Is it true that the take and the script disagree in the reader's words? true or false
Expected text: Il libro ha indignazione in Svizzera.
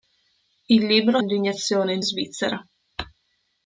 false